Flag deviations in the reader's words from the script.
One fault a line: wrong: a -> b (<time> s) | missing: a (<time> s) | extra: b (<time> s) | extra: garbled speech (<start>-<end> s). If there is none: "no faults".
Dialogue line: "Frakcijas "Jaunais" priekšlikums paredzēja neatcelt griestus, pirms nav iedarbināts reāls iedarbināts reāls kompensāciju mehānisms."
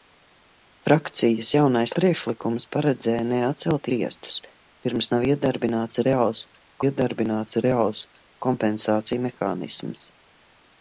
no faults